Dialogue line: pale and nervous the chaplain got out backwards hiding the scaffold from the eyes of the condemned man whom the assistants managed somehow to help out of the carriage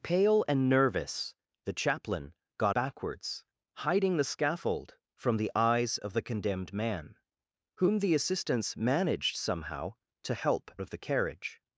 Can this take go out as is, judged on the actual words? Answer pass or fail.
fail